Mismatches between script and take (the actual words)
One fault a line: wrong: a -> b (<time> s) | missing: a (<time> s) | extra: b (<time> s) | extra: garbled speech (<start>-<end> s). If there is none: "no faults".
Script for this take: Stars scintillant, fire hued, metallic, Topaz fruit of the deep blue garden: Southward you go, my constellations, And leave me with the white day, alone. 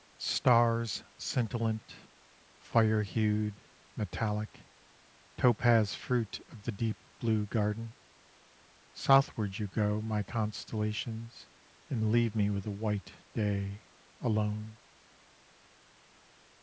no faults